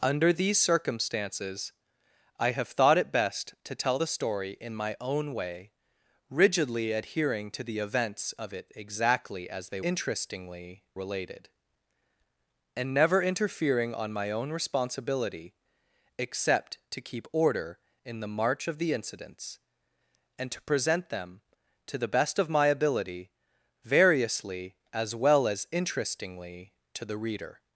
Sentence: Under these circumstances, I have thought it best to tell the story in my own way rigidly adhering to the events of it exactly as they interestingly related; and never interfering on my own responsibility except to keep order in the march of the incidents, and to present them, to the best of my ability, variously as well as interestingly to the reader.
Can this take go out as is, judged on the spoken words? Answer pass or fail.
pass